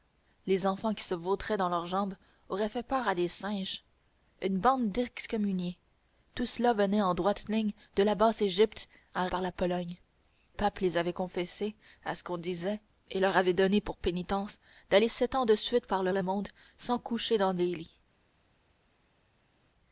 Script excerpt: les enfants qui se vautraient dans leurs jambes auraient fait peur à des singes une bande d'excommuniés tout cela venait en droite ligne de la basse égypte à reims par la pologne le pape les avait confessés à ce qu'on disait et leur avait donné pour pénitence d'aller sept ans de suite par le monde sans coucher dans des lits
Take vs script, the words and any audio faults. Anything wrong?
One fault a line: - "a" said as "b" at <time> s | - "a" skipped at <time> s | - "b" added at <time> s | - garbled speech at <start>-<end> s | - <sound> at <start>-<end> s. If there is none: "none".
- "reims" skipped at 9.3 s
- "le" skipped at 10.0 s
- "le" added at 16.1 s